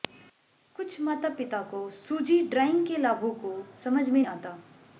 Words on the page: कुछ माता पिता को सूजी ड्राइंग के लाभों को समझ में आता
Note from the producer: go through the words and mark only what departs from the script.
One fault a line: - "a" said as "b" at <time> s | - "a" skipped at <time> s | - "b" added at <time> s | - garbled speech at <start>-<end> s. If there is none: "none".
none